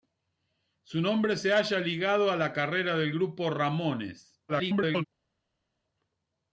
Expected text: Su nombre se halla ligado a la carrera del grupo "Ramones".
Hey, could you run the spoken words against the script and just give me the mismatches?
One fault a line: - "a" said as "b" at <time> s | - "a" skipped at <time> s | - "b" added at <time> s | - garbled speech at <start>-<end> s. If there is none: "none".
- garbled speech at 4.5-5.0 s